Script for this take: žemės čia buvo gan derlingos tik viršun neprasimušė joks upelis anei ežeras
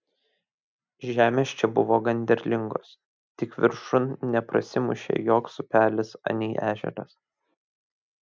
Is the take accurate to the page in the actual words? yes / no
yes